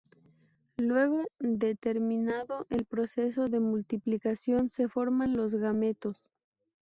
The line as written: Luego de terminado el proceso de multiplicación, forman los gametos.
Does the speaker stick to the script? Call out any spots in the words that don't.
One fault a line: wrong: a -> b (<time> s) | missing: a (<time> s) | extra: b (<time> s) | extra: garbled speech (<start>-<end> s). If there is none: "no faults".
extra: se (4.7 s)